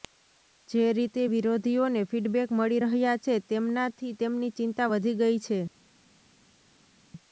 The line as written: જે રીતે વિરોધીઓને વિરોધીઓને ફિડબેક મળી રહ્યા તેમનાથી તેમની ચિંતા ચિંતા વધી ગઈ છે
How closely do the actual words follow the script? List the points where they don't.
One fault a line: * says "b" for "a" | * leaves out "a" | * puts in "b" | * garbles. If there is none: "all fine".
* leaves out "વિરોધીઓને"
* puts in "છે"
* leaves out "ચિંતા"